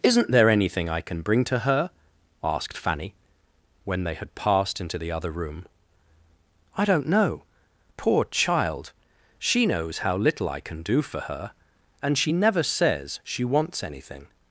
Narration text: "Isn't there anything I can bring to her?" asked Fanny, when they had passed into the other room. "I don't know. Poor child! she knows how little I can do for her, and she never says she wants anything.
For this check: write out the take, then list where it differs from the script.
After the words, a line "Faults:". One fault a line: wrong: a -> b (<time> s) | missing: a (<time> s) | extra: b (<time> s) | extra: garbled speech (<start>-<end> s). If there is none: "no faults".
"Isn't there anything I can bring to her?" asked Fanny, when they had passed into the other room. "I don't know. Poor child! she knows how little I can do for her, and she never says she wants anything.
Faults:
no faults